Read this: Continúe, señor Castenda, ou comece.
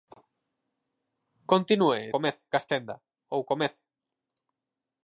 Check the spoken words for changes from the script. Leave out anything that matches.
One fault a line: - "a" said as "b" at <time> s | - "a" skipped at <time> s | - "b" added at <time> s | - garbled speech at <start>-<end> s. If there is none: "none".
- "señor" said as "comece" at 2.1 s